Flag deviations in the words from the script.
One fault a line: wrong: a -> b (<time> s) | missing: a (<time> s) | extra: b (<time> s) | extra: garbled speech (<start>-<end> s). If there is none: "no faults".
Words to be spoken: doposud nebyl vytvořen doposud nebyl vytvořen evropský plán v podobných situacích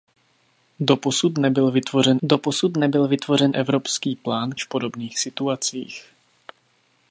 no faults